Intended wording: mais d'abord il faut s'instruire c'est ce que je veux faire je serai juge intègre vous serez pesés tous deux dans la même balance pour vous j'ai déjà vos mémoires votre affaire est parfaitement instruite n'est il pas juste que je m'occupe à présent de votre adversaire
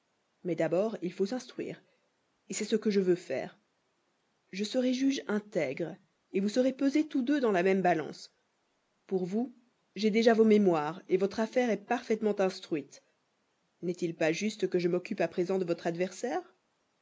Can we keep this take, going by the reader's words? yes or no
yes